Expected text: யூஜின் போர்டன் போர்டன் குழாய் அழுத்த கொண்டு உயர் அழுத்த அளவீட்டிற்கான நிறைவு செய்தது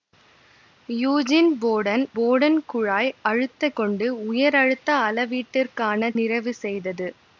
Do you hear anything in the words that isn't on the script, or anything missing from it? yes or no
no